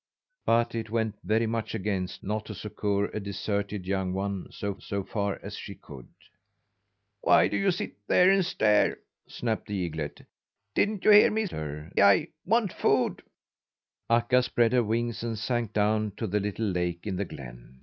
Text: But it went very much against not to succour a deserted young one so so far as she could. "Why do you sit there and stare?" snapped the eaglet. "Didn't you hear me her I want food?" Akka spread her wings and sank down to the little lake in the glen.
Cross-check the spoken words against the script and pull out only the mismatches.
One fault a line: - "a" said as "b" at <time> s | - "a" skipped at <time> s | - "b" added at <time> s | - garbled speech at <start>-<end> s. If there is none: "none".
none